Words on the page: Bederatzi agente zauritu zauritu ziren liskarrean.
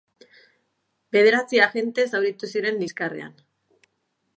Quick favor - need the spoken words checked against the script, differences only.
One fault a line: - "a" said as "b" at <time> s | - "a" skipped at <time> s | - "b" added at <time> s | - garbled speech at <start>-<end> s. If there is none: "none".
- "zauritu" skipped at 2.5 s